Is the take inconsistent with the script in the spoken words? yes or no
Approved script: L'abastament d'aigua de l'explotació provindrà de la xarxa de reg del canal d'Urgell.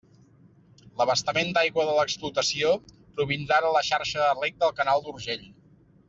no